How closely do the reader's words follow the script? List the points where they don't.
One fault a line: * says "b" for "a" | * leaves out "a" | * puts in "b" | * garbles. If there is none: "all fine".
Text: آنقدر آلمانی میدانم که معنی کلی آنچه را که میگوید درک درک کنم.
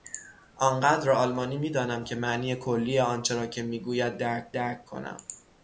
all fine